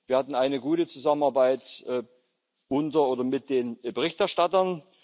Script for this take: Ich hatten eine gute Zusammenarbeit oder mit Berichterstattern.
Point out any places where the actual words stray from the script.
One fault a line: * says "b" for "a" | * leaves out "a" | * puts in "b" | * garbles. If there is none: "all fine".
* says "Wir" for "Ich"
* puts in "unter"
* puts in "den"